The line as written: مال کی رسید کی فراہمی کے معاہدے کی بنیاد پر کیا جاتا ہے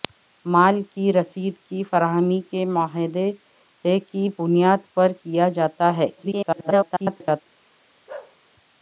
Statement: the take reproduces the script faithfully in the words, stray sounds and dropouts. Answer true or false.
false